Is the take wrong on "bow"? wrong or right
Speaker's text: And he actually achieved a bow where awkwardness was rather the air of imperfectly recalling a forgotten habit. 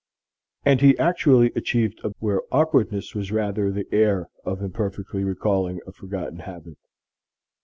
wrong